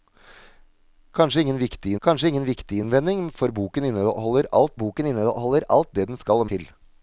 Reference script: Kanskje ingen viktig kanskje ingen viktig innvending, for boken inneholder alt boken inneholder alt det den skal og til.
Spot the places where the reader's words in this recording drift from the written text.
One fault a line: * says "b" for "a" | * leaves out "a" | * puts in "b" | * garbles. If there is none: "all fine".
all fine